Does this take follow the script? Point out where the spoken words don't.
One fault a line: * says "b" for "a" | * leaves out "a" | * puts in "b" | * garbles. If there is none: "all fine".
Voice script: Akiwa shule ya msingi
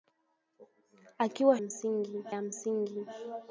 * says "msingi" for "shule"